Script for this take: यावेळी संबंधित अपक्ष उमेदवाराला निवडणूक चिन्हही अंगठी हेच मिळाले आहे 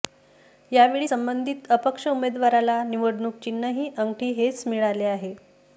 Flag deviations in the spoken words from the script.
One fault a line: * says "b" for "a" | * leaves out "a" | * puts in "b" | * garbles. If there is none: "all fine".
all fine